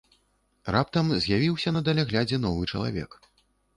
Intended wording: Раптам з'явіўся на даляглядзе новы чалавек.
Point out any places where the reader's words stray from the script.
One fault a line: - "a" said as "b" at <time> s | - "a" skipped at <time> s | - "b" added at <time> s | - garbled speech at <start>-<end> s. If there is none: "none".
none